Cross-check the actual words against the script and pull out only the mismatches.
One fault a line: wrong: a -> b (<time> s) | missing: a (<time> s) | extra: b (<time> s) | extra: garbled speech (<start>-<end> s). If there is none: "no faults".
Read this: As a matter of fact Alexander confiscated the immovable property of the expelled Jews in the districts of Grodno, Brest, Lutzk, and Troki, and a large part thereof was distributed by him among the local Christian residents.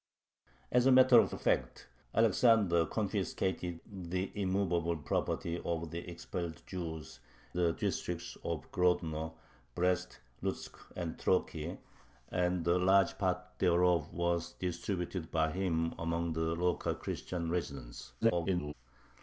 extra: of (1.3 s)
missing: in (7.2 s)
extra: garbled speech (18.2-18.7 s)